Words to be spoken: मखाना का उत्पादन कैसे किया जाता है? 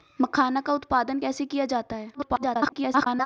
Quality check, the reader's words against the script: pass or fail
fail